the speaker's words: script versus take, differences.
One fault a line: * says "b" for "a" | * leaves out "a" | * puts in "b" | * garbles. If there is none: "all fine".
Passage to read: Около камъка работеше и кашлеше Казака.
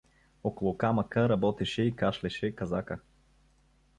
all fine